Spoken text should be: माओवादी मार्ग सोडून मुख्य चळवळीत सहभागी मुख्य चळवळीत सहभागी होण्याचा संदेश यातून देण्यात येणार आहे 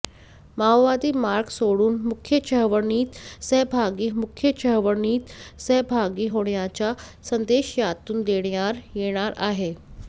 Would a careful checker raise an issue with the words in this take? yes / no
no